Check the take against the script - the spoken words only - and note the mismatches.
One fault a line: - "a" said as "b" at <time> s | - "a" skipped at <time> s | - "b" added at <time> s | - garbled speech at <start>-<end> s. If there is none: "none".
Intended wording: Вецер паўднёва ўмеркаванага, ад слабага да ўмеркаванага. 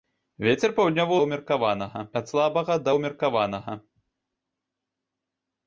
none